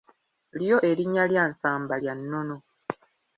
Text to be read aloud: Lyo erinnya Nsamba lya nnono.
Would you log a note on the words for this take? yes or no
yes